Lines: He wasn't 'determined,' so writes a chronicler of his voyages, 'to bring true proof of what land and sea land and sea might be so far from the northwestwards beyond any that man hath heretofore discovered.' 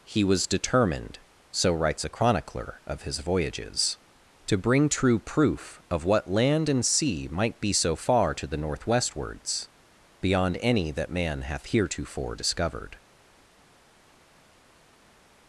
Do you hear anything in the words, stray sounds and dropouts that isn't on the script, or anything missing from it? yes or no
yes